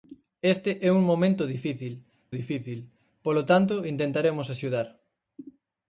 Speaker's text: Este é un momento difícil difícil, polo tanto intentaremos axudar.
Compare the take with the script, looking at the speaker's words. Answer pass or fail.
pass